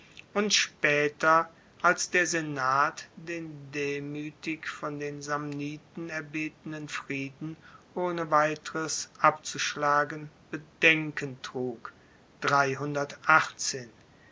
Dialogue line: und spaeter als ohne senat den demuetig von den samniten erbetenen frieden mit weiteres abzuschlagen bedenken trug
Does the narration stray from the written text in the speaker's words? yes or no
yes